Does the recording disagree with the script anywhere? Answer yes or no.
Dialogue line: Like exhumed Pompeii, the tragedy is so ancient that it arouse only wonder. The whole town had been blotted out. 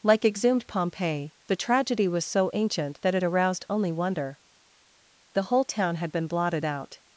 yes